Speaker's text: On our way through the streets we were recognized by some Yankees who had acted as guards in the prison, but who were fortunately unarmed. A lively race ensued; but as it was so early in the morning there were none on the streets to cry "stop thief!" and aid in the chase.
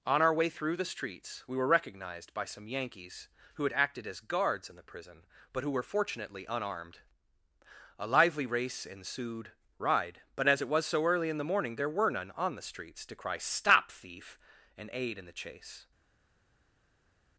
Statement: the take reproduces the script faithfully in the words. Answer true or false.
false